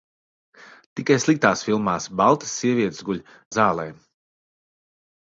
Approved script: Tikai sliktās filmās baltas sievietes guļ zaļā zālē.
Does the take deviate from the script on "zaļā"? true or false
true